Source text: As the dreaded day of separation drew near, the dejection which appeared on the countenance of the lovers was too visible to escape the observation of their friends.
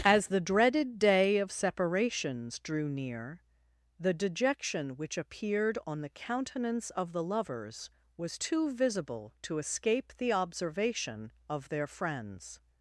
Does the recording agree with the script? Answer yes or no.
no